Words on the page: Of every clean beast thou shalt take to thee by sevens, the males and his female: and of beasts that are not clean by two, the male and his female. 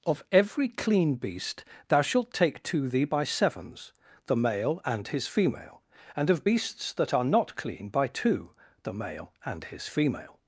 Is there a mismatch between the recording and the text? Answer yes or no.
yes